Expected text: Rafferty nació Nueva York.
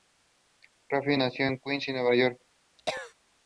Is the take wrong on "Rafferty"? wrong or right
right